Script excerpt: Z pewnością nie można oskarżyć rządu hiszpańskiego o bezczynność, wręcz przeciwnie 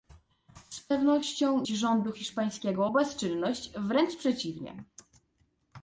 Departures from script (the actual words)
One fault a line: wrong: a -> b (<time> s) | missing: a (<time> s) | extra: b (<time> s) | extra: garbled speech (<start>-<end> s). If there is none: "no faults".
missing: nie można oskarżyć (1.7 s)